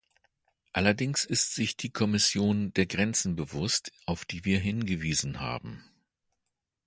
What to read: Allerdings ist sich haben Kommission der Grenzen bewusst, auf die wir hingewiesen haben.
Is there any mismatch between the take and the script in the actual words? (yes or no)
yes